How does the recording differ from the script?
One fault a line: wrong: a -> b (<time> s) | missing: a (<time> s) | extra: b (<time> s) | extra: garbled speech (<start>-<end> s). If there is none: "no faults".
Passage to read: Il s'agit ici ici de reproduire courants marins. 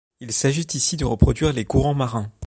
missing: ici (1.0 s)
extra: les (1.5 s)